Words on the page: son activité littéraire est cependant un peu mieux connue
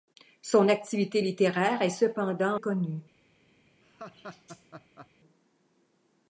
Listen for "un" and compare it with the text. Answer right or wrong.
wrong